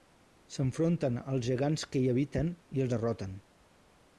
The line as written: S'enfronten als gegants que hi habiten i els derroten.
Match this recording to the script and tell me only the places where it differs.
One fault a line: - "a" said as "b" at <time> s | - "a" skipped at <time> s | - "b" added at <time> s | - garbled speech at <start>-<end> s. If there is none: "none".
none